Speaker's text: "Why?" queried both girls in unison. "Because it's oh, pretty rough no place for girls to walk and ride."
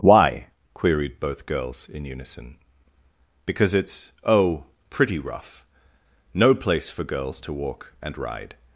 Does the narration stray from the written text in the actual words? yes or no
no